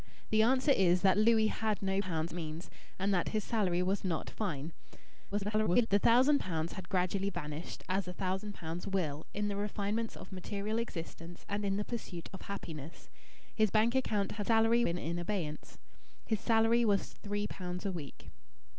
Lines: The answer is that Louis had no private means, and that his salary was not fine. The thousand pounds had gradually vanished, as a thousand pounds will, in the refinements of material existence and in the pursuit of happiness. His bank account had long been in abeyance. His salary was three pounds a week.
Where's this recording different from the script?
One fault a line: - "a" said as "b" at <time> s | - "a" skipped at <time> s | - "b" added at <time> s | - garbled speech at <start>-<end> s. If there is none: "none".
- "private" said as "pounds" at 2.0 s
- garbled speech at 5.3-5.9 s
- "long" said as "salary" at 14.4 s